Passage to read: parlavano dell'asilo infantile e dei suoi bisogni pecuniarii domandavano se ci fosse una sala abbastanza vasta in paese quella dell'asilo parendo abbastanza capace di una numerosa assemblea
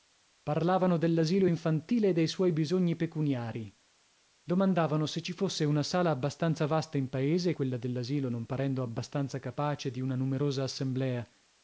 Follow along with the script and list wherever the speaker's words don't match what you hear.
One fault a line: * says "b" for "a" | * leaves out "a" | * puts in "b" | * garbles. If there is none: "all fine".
* puts in "non"